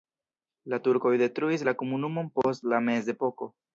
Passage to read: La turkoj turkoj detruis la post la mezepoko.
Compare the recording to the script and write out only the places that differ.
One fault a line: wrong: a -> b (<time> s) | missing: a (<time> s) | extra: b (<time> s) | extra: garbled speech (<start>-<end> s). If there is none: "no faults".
missing: turkoj (1.1 s)
extra: komunumon (1.8 s)